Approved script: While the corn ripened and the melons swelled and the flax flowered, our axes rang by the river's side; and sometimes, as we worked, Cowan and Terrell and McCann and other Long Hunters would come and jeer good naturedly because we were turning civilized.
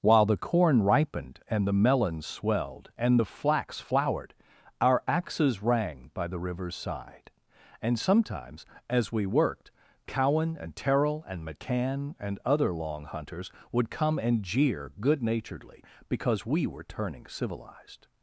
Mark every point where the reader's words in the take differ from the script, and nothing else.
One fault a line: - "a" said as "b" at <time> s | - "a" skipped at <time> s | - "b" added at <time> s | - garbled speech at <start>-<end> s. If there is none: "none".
none